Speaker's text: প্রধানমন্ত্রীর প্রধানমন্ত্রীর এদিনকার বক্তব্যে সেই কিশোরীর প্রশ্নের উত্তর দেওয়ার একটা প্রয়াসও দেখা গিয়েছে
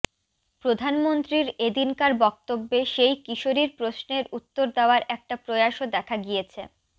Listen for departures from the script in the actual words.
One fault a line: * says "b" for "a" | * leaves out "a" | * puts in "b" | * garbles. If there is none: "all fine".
* leaves out "প্রধানমন্ত্রীর"